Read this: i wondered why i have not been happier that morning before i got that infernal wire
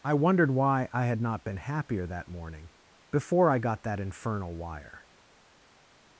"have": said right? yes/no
no